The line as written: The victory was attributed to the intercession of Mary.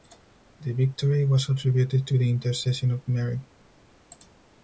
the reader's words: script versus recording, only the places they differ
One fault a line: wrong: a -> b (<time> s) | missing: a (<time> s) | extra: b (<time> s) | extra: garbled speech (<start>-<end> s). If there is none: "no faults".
no faults